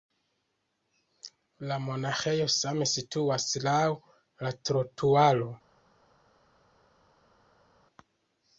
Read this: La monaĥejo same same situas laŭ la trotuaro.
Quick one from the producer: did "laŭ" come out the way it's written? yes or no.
yes